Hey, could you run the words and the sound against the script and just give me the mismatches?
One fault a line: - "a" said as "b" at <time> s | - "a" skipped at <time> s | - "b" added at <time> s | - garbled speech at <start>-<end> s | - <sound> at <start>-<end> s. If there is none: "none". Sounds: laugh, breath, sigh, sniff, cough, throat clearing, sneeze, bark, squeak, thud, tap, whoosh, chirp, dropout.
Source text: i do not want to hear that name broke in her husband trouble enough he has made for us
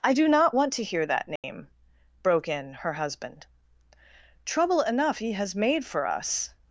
- dropout at 1.4-1.4 s